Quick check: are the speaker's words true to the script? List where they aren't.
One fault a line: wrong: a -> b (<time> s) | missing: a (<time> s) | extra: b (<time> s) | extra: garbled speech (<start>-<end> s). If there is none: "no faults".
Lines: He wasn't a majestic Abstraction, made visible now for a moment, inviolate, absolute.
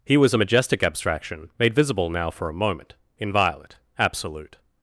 wrong: wasn't -> was (0.2 s)